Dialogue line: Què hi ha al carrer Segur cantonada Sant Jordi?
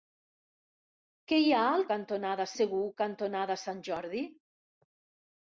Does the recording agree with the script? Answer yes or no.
no